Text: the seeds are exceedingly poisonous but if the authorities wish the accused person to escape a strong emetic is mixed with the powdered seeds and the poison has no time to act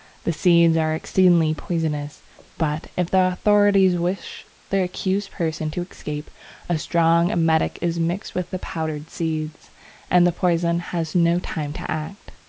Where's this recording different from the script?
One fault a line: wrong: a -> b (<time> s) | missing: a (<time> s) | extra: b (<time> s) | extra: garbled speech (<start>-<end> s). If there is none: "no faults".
no faults